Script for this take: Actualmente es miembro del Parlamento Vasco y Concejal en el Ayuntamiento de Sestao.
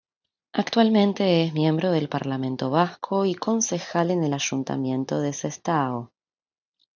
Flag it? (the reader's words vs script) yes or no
no